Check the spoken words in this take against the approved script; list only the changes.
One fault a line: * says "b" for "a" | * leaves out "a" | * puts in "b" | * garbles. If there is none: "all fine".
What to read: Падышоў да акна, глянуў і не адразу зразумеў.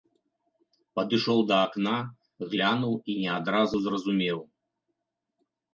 all fine